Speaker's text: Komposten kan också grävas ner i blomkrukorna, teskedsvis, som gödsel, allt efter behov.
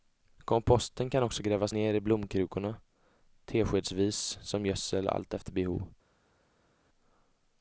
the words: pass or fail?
pass